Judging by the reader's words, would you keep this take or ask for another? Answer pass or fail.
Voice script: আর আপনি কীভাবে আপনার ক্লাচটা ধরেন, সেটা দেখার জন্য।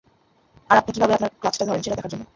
pass